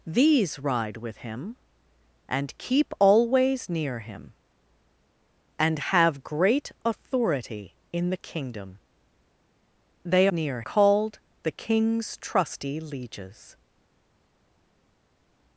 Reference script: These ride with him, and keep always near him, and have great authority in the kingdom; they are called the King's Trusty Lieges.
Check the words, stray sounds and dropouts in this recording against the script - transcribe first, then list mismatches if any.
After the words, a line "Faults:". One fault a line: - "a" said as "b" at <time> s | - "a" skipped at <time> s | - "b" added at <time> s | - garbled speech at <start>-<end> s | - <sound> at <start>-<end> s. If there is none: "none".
These ride with him, and keep always near him, and have great authority in the kingdom; they near called the King's Trusty Lieges.
Faults:
- "are" said as "near" at 10.3 s